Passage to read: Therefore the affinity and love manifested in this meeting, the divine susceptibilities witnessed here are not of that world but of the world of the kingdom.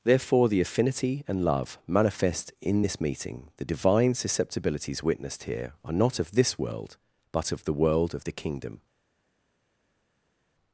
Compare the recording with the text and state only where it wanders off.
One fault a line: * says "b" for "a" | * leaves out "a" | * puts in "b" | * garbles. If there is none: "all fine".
* says "manifest" for "manifested"
* says "this" for "that"